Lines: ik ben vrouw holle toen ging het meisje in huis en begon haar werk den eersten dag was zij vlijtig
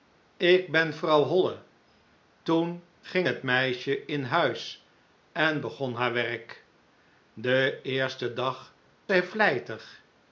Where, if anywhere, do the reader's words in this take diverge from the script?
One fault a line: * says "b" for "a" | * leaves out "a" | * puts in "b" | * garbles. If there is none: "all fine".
* leaves out "was"